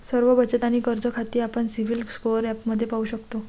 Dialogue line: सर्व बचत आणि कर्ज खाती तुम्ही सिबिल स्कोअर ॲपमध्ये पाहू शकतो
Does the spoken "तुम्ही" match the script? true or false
false